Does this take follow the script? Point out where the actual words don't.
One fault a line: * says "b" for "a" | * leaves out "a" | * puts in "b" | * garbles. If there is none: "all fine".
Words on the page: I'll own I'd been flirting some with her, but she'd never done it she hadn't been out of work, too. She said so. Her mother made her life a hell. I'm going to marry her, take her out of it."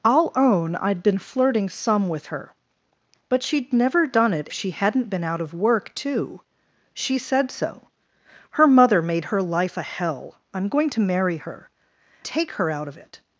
all fine